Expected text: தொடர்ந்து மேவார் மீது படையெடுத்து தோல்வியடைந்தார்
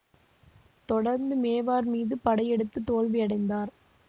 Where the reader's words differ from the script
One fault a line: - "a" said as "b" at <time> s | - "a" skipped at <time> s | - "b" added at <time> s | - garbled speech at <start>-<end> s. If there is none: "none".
none